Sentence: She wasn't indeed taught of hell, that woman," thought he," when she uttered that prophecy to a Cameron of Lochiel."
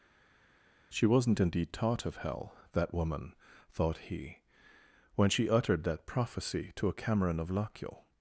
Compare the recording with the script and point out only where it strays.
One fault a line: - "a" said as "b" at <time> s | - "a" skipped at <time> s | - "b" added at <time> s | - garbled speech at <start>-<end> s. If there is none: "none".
none